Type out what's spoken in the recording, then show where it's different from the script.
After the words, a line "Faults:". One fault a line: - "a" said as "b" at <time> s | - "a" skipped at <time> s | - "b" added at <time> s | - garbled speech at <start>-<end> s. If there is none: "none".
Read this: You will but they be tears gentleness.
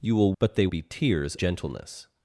You will but they be tears gentleness.
Faults:
none